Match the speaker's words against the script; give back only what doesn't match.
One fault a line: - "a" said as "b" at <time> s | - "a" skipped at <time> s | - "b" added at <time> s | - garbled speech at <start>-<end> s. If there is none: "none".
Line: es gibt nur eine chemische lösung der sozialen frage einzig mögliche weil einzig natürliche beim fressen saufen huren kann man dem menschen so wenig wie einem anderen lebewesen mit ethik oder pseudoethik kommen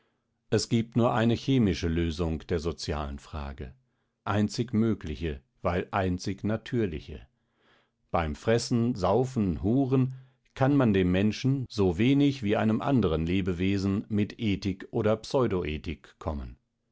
none